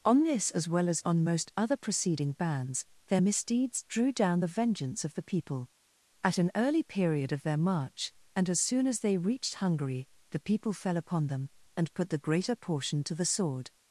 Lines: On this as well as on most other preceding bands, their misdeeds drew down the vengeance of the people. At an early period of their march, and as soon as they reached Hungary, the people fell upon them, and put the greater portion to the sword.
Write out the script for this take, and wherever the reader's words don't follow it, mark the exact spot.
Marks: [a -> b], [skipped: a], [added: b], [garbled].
On this as well as on most other preceding bands, their misdeeds drew down the vengeance of the people. At an early period of their march, and as soon as they reached Hungary, the people fell upon them, and put the greater portion to the sword.